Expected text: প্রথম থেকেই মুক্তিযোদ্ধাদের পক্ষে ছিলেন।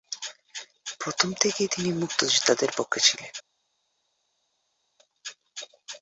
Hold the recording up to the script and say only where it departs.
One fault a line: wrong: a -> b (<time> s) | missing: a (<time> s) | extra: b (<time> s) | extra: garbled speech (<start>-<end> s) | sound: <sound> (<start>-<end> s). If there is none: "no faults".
extra: তিনি (1.7 s)